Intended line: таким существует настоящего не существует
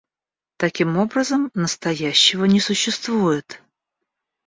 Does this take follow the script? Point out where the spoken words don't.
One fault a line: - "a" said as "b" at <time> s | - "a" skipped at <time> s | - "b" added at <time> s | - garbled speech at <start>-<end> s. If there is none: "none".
- "существует" said as "образом" at 1.0 s